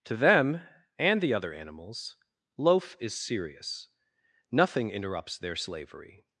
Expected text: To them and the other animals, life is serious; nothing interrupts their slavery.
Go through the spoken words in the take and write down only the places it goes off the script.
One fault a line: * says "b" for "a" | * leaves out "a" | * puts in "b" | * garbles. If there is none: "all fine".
* says "loaf" for "life"